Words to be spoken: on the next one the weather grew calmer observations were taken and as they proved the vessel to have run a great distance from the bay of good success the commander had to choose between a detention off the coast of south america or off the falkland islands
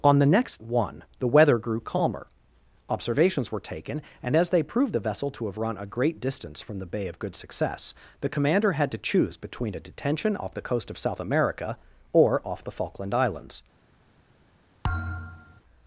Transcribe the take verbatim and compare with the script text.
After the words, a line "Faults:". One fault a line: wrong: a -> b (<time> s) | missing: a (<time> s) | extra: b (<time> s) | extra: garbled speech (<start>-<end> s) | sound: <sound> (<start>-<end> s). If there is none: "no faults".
on the next one the weather grew calmer observations were taken and as they proved the vessel to have run a great distance from the bay of good success the commander had to choose between a detention off the coast of south america or off the falkland islands
Faults:
sound: thud (14.8-15.6 s)